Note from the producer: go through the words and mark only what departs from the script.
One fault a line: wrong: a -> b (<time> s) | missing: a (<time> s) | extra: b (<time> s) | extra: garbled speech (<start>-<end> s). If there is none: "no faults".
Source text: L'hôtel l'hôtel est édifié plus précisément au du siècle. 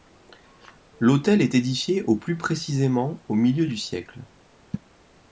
missing: l'hôtel (1.4 s)
extra: au (2.1 s)
extra: milieu (3.3 s)